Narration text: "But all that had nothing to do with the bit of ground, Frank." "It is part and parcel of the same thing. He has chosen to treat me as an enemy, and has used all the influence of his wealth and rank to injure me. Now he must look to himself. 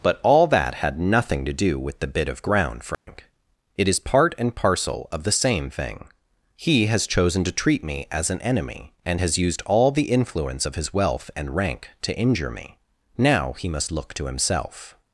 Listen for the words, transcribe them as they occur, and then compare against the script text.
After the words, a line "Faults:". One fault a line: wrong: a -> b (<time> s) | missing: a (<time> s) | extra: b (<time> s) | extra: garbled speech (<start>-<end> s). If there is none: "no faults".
"But all that had nothing to do with the bit of ground, Frank." "It is part and parcel of the same thing. He has chosen to treat me as an enemy, and has used all the influence of his wealth and rank to injure me. Now he must look to himself.
Faults:
no faults